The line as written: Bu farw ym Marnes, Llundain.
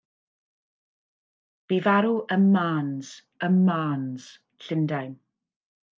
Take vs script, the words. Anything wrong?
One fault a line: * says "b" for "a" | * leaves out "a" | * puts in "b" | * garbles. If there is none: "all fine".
* puts in "ym Marnes"